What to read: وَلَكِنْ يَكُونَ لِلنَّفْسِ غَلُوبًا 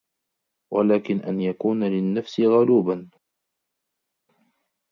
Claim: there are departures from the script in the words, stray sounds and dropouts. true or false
true